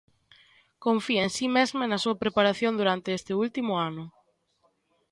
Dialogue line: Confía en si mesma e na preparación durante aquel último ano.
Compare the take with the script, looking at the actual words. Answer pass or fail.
fail